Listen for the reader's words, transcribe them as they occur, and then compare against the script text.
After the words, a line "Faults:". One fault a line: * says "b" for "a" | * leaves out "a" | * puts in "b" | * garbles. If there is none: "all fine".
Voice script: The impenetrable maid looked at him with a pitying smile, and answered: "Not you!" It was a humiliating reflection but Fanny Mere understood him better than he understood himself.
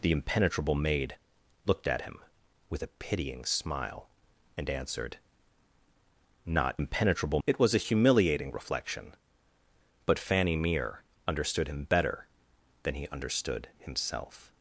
The impenetrable maid looked at him with a pitying smile, and answered: "Not impenetrable!" It was a humiliating reflection but Fanny Mere understood him better than he understood himself.
Faults:
* says "impenetrable" for "you"